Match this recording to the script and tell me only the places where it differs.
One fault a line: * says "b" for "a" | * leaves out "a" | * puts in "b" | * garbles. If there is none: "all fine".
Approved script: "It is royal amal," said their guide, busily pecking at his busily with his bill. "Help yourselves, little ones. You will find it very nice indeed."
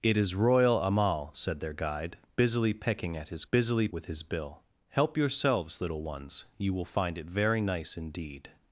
all fine